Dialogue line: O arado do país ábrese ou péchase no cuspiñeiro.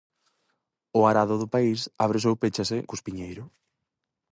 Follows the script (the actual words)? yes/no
no